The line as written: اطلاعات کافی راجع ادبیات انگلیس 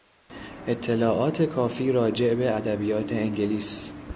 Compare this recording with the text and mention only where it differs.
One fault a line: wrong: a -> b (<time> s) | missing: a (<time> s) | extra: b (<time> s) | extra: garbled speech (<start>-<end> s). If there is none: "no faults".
extra: به (2.3 s)